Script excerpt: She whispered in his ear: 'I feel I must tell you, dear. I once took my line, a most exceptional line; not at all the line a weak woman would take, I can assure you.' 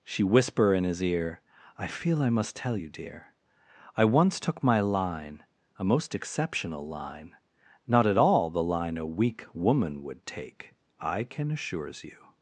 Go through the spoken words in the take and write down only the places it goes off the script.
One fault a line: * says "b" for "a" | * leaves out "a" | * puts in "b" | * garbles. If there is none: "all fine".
* says "whisper" for "whispered"
* says "assures" for "assure"